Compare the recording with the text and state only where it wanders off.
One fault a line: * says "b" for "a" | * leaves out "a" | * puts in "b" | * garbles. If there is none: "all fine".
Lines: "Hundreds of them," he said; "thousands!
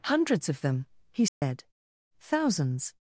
all fine